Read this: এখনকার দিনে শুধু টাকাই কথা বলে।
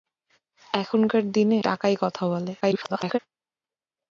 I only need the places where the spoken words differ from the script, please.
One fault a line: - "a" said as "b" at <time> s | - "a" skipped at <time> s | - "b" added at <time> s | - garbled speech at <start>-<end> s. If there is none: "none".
- "শুধু" skipped at 1.6 s
- garbled speech at 2.6-3.2 s